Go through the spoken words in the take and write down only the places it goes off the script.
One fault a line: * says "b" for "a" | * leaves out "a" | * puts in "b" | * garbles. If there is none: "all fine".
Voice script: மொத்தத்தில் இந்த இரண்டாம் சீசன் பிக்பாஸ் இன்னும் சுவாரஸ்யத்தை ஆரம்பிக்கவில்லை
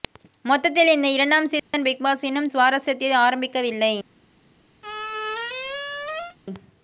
all fine